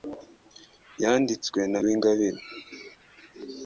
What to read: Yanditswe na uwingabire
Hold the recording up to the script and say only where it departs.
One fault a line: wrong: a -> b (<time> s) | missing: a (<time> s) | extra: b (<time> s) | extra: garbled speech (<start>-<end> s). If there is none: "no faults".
no faults